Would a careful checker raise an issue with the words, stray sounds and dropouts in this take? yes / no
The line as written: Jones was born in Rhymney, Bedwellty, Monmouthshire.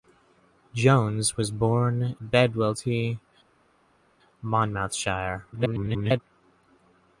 yes